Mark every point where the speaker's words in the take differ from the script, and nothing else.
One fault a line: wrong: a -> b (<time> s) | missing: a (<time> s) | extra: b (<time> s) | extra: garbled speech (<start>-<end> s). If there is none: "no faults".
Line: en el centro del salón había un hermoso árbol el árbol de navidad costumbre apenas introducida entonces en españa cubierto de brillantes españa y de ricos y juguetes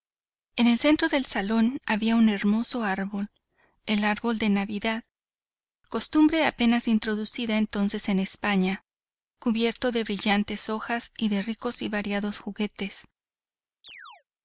wrong: españa -> hojas (10.7 s)
extra: variados (11.9 s)